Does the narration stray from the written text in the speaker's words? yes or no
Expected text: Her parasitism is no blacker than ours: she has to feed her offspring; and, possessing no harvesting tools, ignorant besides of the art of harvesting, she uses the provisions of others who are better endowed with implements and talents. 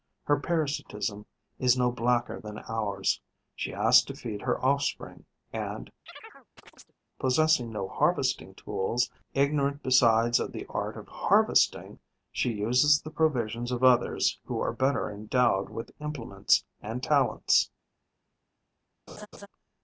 no